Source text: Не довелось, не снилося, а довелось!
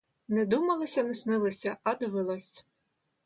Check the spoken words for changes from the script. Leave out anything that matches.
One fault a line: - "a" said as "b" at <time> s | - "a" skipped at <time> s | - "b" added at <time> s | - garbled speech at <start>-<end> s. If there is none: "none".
- "довелось" said as "думалося" at 0.5 s